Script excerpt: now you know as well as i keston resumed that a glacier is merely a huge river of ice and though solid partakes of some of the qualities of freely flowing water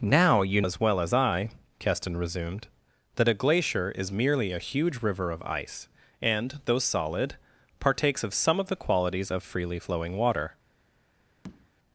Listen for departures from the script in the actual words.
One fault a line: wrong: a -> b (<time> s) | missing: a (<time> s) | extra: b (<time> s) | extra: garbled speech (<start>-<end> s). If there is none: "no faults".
missing: know (0.6 s)